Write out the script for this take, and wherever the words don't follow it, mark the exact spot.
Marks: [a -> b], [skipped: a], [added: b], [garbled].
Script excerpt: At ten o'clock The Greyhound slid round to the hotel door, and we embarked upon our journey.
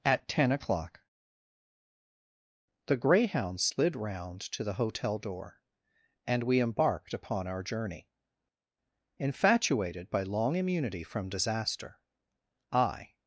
At ten o'clock The Greyhound slid round to the hotel door, and we embarked upon our journey. [added: Infatuated by long immunity from disaster I]